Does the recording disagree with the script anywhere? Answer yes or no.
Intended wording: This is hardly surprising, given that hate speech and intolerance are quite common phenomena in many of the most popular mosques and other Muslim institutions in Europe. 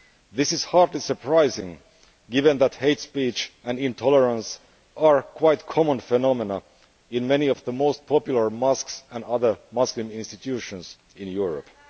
no